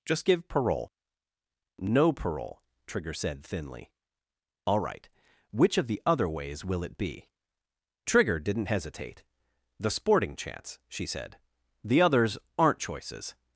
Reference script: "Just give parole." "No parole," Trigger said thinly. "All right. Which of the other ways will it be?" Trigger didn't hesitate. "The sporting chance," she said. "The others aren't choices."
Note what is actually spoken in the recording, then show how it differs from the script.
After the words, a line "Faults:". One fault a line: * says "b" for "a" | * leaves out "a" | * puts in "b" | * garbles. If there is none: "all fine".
"Just give parole." "No parole," Trigger said thinly. "All right. Which of the other ways will it be?" Trigger didn't hesitate. "The sporting chance," she said. "The others aren't choices."
Faults:
all fine